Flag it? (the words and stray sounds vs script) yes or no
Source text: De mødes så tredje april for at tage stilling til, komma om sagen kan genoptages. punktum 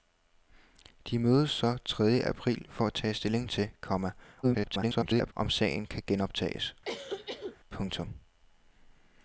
yes